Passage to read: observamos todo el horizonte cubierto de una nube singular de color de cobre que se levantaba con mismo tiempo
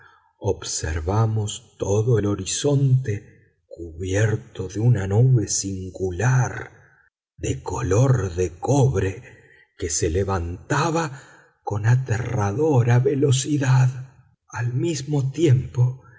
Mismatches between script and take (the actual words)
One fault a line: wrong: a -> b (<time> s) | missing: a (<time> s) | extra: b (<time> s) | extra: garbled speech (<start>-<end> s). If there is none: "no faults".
extra: aterradora velocidad al (11.9 s)